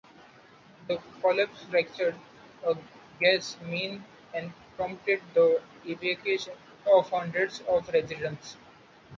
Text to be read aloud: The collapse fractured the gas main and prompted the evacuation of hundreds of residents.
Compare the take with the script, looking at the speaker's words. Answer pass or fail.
fail